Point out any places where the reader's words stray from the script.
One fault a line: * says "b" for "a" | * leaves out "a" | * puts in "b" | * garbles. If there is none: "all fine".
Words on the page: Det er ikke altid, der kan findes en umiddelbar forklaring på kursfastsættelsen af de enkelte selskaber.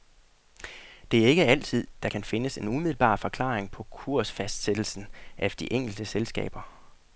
all fine